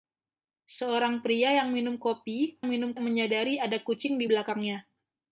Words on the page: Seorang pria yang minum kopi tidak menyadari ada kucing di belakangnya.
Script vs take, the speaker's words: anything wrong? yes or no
yes